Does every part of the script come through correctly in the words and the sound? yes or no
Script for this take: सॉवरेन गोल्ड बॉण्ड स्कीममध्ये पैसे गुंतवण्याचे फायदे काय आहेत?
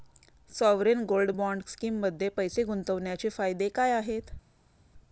yes